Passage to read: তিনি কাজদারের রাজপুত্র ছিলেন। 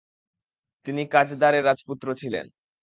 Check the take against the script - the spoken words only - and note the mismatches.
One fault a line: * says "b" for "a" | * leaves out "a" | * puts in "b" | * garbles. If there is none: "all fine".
all fine